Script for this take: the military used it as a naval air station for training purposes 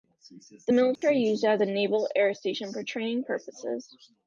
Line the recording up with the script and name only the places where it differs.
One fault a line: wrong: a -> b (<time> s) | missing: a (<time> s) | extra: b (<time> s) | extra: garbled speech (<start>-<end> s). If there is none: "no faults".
no faults